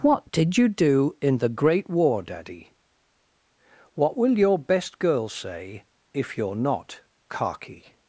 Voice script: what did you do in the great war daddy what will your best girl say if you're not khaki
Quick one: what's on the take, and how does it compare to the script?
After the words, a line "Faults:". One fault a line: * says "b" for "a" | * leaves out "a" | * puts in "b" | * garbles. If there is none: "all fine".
what did you do in the great war daddy what will your best girl say if you're not khaki
Faults:
all fine